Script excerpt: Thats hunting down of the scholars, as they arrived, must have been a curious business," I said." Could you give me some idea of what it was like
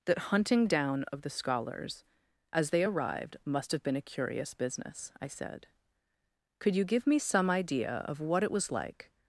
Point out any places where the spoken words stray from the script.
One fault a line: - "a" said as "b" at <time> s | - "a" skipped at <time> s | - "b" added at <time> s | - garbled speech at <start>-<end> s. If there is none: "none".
- "Thats" said as "That" at 0.1 s